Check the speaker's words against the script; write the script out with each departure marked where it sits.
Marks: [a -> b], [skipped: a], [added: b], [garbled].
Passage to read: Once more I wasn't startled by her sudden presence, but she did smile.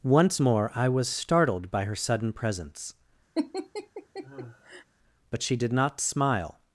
Once more I [wasn't -> was] startled by her sudden presence, but she did [added: not] smile.